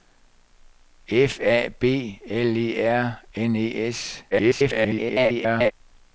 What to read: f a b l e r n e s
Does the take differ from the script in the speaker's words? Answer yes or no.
yes